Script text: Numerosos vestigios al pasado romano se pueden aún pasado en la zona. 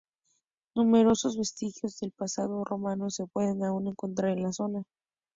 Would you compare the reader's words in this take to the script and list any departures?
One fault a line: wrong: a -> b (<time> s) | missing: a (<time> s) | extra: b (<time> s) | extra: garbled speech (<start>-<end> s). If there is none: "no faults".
wrong: al -> del (2.0 s)
wrong: pasado -> encontrar (3.9 s)